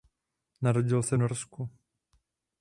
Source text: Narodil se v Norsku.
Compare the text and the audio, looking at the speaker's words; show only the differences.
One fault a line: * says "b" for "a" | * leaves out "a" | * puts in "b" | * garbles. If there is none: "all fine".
all fine